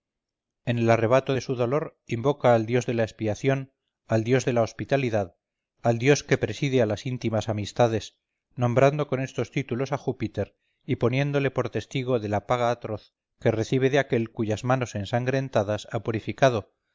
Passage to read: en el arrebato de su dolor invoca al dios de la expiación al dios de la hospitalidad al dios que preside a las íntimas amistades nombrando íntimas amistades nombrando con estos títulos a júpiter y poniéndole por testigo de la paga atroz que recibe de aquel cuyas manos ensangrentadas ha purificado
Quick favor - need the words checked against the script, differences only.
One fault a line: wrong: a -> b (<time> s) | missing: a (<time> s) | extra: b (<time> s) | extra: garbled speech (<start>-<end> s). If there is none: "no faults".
missing: íntimas amistades nombrando (9.1 s)